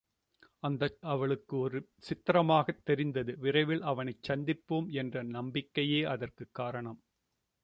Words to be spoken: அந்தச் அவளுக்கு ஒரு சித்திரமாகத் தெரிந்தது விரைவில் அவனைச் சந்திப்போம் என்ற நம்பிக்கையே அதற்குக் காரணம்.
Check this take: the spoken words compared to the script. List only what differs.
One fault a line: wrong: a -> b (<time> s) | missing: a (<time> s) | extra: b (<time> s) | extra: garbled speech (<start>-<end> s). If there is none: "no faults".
no faults